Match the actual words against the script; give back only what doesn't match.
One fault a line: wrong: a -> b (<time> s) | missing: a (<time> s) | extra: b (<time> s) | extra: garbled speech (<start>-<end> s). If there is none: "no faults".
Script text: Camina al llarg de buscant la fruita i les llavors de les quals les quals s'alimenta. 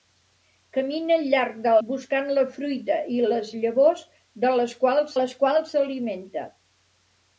no faults